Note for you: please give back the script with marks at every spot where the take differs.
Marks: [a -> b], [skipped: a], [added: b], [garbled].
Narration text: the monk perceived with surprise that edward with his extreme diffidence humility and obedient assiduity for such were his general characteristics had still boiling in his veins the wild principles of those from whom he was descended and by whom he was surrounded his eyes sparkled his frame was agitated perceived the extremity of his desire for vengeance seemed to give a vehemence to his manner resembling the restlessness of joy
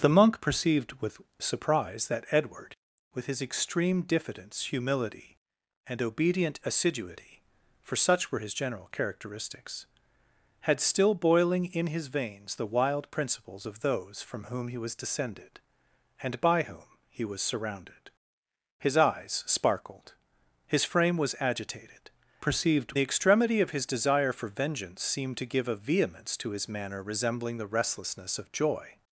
the monk perceived with surprise that edward with his extreme diffidence humility and obedient assiduity for such were his general characteristics had still boiling in his veins the wild principles of those from whom he was descended and by whom he was surrounded his eyes sparkled his frame was agitated perceived the extremity of his desire for vengeance seemed to give a vehemence to his manner resembling the restlessness of joy